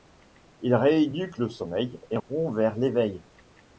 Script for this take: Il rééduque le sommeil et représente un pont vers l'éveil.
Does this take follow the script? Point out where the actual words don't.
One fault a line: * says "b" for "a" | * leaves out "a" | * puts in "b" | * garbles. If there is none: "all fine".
* leaves out "représente un"